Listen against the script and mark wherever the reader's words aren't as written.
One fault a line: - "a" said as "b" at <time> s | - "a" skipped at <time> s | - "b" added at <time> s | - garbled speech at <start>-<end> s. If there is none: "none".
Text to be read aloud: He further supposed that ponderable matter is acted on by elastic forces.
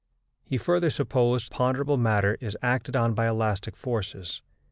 - "that" skipped at 1.5 s